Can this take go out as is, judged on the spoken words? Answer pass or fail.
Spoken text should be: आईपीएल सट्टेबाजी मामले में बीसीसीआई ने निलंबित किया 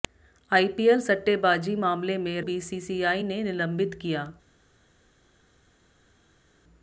pass